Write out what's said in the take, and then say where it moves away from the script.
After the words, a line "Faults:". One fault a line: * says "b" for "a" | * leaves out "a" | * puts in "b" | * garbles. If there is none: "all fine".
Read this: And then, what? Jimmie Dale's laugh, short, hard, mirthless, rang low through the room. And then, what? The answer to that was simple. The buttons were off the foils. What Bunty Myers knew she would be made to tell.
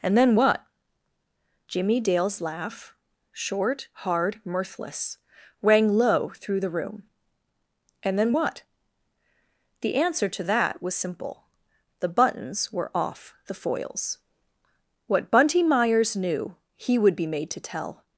And then, what? Jimmie Dale's laugh, short, hard, mirthless, rang low through the room. And then, what? The answer to that was simple. The buttons were off the foils. What Bunty Myers knew he would be made to tell.
Faults:
* says "he" for "she"